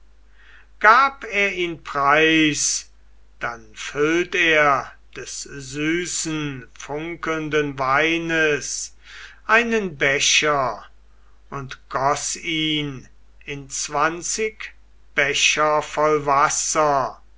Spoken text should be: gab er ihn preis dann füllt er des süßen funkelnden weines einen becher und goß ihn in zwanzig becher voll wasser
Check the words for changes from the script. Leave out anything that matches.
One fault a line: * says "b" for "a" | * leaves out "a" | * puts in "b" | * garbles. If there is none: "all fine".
all fine